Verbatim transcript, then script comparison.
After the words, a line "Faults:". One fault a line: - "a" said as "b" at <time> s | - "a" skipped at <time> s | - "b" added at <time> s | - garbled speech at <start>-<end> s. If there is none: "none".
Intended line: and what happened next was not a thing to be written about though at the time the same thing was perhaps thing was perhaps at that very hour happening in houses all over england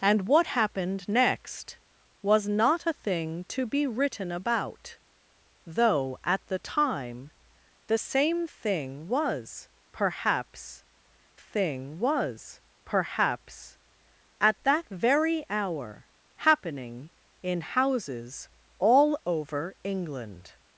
and what happened next was not a thing to be written about though at the time the same thing was perhaps thing was perhaps at that very hour happening in houses all over england
Faults:
none